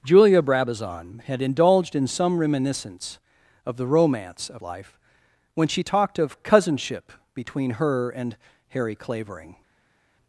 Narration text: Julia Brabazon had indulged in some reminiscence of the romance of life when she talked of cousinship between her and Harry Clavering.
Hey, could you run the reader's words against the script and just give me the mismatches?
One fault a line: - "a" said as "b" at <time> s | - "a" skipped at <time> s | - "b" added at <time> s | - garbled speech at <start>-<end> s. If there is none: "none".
none